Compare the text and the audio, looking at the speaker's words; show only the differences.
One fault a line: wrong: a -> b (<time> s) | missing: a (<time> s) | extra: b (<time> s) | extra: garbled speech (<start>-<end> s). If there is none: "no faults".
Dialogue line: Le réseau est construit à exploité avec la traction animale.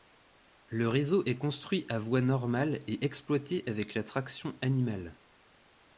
extra: voie normale et (2.0 s)